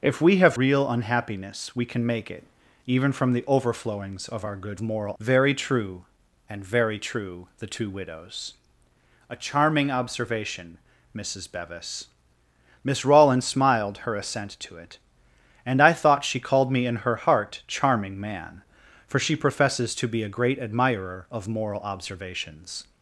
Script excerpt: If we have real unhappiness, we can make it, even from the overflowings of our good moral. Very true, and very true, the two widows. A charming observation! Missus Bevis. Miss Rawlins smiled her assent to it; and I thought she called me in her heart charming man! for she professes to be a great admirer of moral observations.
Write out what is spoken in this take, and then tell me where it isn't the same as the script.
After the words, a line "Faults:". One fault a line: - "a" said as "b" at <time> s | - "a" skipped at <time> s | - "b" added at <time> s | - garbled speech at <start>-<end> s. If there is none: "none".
If we have real unhappiness, we can make it, even from the overflowings of our good moral. Very true, and very true, the two widows. A charming observation! Missus Bevis. Miss Rawlins smiled her assent to it; and I thought she called me in her heart charming man! for she professes to be a great admirer of moral observations.
Faults:
none